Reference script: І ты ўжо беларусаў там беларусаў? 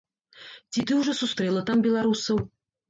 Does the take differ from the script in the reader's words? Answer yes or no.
yes